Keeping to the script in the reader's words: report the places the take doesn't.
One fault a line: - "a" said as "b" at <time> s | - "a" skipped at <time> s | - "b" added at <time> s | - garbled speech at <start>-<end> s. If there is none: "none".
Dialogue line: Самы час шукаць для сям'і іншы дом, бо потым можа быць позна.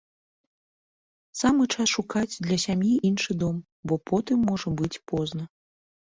none